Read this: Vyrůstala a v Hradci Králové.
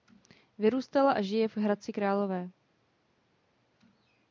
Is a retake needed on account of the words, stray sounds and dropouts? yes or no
yes